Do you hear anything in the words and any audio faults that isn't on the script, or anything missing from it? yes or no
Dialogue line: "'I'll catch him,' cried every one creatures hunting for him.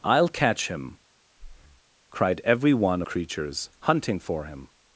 yes